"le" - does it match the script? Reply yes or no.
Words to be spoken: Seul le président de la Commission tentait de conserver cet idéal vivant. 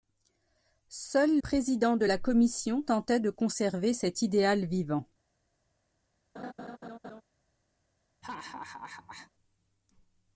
no